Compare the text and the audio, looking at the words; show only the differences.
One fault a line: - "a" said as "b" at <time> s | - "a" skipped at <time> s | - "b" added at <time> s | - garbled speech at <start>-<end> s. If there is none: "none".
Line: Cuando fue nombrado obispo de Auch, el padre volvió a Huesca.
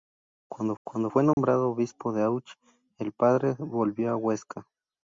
- "cuando" added at 0.8 s